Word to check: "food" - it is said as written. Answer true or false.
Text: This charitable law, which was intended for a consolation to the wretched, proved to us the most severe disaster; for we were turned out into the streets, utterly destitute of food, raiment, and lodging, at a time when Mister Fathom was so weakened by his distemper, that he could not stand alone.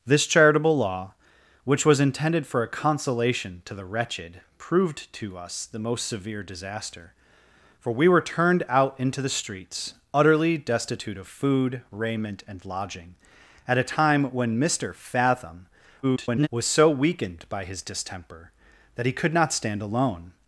true